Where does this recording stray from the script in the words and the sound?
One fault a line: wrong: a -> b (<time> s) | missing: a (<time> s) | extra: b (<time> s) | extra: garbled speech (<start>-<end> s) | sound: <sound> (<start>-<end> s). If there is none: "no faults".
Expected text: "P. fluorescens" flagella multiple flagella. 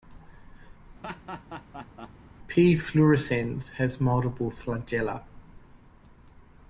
sound: laugh (1.0-2.1 s)
wrong: flagella -> has (3.7 s)